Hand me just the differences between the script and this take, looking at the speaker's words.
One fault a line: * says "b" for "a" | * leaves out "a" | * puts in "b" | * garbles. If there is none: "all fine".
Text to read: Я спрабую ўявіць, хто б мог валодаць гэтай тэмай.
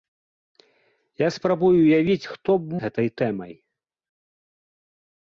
* leaves out "мог валодаць"